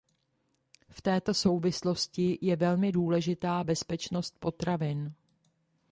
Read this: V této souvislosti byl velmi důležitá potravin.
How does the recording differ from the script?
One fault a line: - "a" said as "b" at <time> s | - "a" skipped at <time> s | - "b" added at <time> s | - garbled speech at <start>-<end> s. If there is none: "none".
- "byl" said as "je" at 2.4 s
- "bezpečnost" added at 3.6 s